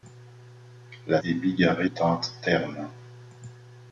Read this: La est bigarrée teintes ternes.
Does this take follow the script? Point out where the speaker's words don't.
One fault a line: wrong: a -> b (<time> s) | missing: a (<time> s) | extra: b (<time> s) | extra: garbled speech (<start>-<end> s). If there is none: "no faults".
no faults